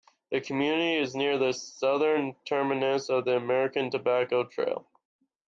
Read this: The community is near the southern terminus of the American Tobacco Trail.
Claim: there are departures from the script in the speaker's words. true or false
false